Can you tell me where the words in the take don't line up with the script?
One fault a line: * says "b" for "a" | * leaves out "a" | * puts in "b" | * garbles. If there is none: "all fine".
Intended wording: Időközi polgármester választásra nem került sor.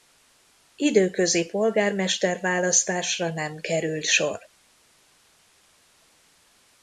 all fine